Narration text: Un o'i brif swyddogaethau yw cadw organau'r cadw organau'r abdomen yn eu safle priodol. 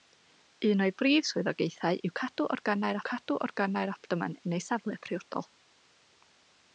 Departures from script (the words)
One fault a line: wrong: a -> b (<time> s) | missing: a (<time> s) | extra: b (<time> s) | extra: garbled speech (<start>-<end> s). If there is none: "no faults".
no faults